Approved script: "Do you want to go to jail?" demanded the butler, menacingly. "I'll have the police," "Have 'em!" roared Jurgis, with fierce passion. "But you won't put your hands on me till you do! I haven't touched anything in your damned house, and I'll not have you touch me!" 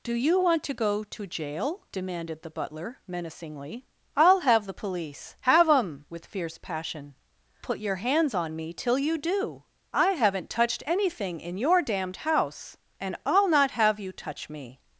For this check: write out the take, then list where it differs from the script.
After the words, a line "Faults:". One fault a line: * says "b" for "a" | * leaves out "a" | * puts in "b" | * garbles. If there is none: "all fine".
"Do you want to go to jail?" demanded the butler, menacingly. "I'll have the police," "Have 'em!" with fierce passion. "Put your hands on me till you do! I haven't touched anything in your damned house, and I'll not have you touch me!"
Faults:
* leaves out "roared Jurgis"
* leaves out "But you won't"